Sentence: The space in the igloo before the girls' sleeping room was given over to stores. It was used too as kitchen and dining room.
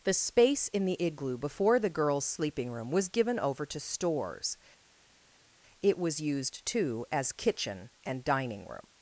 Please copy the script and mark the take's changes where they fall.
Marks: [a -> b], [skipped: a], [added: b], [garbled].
The space in the igloo before the girls' sleeping room was given over to stores. It was used too as kitchen and dining room.